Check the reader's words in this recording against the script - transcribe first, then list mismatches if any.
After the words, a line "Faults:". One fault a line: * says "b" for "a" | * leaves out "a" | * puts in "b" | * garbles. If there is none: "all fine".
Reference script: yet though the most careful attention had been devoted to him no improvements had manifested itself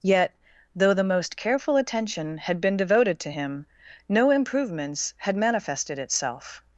yet though the most careful attention had been devoted to him no improvements had manifested itself
Faults:
all fine